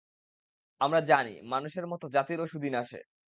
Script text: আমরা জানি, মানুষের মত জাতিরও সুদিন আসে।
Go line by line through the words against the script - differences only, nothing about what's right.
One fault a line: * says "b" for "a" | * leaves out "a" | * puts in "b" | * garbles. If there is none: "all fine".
all fine